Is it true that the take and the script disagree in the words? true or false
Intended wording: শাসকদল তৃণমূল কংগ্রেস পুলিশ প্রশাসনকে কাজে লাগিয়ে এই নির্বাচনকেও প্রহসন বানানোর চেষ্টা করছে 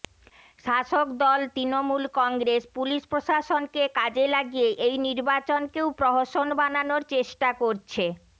false